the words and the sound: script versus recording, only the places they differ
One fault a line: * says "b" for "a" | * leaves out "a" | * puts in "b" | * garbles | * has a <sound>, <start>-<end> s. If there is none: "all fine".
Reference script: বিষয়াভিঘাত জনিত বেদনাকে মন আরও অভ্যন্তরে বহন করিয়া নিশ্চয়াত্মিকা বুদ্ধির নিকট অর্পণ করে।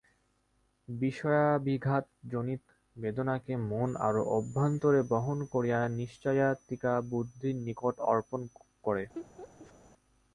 * has a laugh, 9.2-9.7 s